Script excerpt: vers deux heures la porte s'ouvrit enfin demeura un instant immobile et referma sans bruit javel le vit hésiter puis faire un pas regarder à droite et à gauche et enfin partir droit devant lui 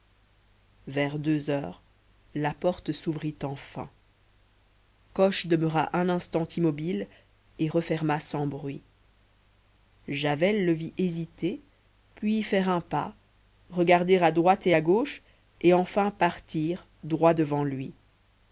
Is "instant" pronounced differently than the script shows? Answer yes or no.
no